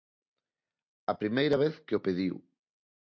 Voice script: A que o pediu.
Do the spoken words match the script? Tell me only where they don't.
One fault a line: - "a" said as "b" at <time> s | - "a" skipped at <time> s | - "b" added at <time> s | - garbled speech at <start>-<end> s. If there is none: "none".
- "primeira vez" added at 1.1 s